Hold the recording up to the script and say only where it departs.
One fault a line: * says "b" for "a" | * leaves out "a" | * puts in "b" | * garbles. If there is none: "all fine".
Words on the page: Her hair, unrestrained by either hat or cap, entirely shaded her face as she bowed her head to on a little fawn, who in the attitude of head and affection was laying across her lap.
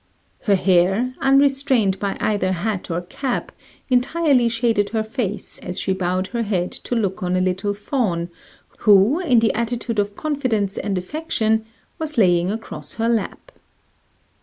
* puts in "look"
* says "confidence" for "head"